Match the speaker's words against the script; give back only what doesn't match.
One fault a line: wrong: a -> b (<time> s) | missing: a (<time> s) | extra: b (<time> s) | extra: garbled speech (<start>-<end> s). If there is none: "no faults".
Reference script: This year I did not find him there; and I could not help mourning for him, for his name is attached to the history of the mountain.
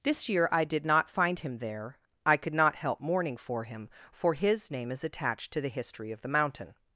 missing: and (2.0 s)